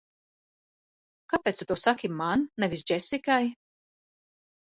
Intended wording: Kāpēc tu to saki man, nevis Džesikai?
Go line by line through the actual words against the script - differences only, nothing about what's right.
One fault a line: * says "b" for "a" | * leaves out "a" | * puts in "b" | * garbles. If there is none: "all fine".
all fine